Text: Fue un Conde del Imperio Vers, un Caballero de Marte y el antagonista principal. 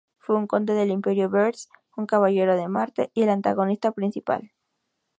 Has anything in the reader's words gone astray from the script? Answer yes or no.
no